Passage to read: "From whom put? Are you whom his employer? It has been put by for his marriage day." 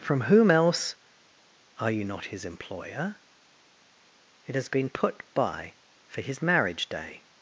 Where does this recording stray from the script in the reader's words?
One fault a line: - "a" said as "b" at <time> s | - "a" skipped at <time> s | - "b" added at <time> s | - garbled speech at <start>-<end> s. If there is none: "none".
- "put" said as "else" at 0.5 s
- "whom" said as "not" at 2.0 s